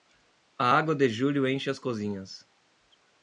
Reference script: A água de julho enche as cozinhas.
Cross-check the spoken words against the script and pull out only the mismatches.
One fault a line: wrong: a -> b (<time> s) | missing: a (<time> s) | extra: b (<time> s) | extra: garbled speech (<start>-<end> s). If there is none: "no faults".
no faults